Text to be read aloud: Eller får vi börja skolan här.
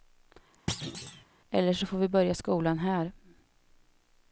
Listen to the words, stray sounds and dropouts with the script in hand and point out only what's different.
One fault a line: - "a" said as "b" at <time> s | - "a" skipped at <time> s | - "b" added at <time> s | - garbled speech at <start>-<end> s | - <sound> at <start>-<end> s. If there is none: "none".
- thud at 0.7-1.2 s
- "så" added at 1.7 s